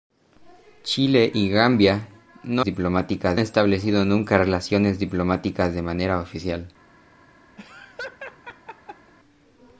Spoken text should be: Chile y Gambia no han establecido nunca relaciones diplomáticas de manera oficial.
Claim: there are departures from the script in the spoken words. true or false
true